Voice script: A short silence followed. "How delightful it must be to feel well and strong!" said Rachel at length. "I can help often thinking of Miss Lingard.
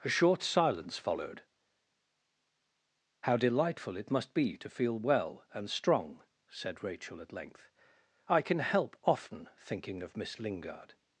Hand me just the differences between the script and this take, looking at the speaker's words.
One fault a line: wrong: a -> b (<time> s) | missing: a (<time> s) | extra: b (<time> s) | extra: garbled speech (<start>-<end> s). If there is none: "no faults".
no faults